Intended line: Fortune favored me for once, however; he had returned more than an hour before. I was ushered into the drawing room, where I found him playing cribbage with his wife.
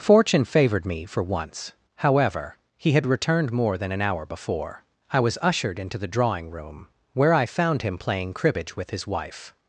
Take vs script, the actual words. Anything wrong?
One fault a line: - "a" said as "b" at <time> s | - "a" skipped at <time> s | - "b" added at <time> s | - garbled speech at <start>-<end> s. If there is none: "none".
none